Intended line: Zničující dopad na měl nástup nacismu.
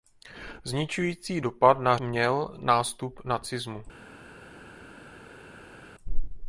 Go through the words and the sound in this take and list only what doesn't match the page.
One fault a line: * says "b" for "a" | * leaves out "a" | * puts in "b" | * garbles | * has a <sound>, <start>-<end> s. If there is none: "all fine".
all fine